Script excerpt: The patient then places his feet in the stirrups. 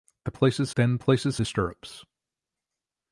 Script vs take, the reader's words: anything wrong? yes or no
yes